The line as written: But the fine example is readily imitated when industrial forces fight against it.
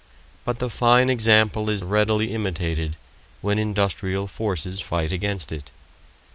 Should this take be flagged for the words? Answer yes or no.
no